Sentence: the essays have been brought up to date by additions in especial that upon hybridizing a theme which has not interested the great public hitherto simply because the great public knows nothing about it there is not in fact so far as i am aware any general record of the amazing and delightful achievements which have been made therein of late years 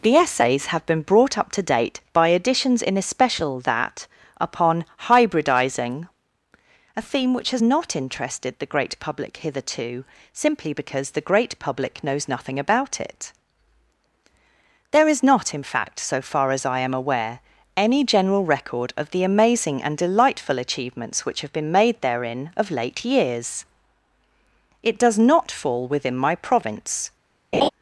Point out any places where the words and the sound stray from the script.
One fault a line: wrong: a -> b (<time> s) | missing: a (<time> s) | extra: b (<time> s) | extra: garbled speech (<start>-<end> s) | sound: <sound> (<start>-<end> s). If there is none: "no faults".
extra: it does not fall within my province (24.8 s)
sound: laugh (27.5-27.7 s)